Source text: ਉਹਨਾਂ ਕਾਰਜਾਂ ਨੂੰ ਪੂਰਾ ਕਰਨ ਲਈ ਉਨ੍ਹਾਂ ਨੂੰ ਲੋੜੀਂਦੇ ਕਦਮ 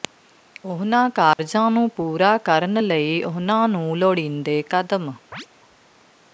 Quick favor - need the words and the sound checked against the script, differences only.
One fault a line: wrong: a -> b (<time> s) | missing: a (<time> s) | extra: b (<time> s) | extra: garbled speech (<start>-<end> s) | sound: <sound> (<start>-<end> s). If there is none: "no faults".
sound: dropout (1.3-1.4 s)
sound: chirp (5.3-5.5 s)